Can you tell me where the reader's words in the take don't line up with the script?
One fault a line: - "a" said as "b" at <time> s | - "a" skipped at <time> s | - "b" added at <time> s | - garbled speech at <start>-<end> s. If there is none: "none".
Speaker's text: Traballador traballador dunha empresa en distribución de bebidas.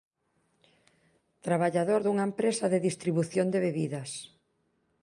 - "traballador" skipped at 2.0 s
- "en" said as "de" at 2.7 s